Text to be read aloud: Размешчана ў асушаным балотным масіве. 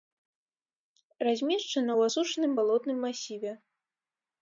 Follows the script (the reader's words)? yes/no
yes